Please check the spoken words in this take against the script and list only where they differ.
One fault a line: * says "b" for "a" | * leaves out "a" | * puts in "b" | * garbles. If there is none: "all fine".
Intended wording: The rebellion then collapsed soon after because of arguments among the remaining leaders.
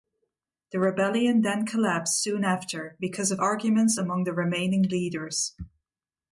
all fine